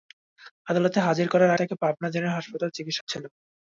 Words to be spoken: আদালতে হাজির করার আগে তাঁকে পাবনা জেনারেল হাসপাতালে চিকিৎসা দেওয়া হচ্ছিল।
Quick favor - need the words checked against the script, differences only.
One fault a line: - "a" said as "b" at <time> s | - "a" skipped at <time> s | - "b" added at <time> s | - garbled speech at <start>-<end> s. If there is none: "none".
- "আগে" skipped at 1.5 s
- "দেওয়া" skipped at 3.0 s